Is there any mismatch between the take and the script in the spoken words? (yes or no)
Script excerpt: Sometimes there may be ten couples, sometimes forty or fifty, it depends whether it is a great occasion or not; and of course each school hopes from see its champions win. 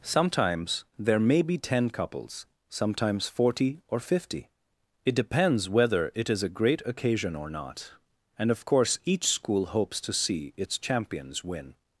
yes